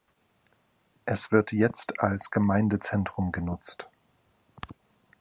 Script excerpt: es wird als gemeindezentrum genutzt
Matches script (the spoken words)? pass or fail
fail